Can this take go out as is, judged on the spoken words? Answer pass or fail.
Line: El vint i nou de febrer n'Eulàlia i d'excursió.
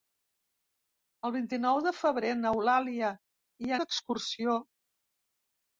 pass